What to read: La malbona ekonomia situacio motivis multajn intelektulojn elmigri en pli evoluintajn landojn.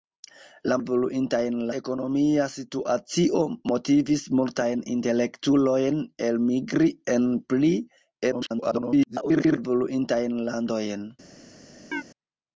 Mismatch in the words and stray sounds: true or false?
true